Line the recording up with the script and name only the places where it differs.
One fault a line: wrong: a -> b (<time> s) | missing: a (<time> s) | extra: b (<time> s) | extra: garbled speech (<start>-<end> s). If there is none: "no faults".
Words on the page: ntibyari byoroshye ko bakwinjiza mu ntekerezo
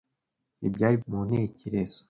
missing: byoroshye ko bakwinjiza (0.9 s)